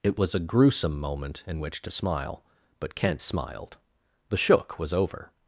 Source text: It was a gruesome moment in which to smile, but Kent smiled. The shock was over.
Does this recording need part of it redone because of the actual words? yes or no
yes